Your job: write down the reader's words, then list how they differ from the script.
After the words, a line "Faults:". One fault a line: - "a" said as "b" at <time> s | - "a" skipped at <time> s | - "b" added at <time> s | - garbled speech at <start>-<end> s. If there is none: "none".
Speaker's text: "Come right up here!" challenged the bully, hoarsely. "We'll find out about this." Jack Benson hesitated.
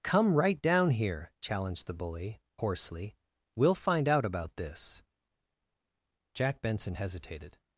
"Come right down here!" challenged the bully, hoarsely. "We'll find out about this." Jack Benson hesitated.
Faults:
- "up" said as "down" at 0.6 s